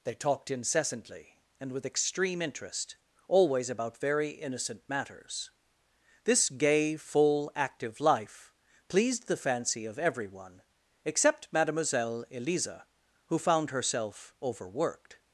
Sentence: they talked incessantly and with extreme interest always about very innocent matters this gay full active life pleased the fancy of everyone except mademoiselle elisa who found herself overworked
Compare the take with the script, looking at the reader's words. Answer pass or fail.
pass